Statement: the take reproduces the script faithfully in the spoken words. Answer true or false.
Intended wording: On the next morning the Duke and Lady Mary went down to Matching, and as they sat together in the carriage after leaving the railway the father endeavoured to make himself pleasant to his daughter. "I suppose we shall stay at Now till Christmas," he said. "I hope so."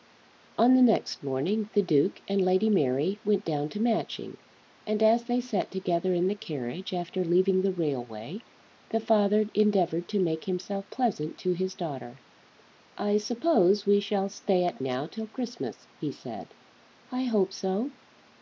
true